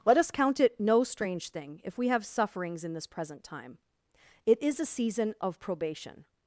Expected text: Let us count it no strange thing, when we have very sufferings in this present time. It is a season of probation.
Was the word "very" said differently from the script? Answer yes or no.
yes